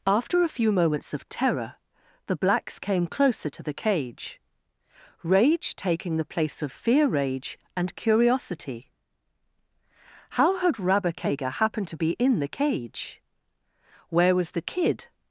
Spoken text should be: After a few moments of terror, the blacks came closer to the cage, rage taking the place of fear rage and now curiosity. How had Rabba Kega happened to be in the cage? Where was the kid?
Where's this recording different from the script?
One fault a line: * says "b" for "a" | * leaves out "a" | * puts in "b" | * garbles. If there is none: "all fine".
* leaves out "now"